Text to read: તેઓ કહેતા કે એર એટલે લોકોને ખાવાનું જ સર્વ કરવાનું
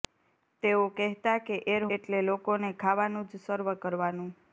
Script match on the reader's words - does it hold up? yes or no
yes